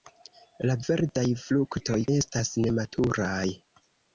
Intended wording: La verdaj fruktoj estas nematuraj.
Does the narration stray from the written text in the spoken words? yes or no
no